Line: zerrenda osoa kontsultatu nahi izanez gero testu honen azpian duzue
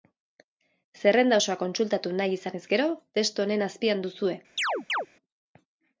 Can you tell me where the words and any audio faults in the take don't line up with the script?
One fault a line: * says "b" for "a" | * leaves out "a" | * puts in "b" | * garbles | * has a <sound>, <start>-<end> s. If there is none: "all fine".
* has a chirp, 4.6-5.1 s